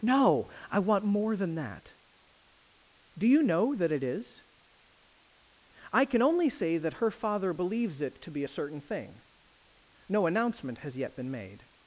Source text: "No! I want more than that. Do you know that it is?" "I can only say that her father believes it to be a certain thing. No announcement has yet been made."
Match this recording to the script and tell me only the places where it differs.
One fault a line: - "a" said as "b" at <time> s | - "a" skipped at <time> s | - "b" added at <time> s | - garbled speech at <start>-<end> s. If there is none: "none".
none